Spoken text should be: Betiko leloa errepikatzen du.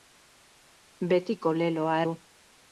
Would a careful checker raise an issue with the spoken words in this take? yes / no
yes